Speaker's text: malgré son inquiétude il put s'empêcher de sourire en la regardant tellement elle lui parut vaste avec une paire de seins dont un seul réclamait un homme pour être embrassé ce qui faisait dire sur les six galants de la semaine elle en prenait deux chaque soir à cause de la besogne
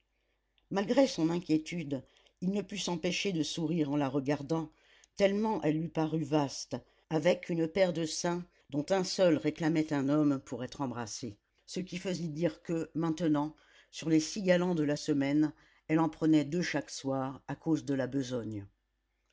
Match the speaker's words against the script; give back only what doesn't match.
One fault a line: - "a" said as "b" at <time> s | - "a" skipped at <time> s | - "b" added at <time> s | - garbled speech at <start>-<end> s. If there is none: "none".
- "ne" added at 2.5 s
- "que maintenant" added at 12.6 s